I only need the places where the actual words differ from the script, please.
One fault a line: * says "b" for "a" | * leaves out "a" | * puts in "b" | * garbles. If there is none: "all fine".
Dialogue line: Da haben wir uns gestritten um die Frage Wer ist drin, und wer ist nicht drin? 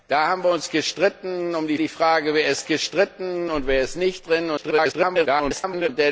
* puts in "die"
* says "gestritten" for "drin"
* garbles